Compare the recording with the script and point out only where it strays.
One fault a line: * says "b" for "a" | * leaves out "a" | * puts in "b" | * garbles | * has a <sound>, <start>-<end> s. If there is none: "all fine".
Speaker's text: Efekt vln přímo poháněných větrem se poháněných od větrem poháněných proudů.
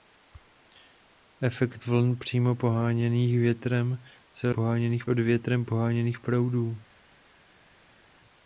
all fine